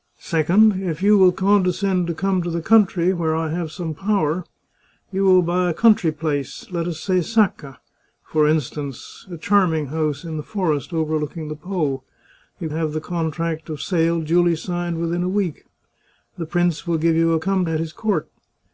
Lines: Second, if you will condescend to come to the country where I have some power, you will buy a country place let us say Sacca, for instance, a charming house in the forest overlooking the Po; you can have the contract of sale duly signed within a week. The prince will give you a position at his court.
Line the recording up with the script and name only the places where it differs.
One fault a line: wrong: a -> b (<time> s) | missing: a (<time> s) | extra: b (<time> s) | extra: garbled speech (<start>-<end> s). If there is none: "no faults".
missing: can (12.7 s)
wrong: position -> come (17.4 s)